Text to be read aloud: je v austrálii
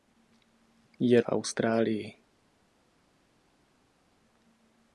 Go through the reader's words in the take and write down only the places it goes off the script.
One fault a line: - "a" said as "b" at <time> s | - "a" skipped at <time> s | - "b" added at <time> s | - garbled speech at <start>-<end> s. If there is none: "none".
none